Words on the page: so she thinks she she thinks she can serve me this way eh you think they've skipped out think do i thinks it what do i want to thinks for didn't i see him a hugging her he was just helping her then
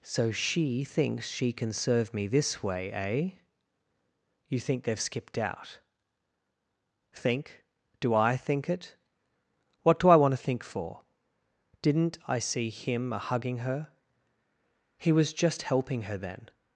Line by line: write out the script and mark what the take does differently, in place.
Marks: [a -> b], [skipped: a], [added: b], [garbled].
so she thinks she [skipped: she thinks she] can serve me this way eh you think they've skipped out think do i [thinks -> think] it what do i want to [thinks -> think] for didn't i see him a hugging her he was just helping her then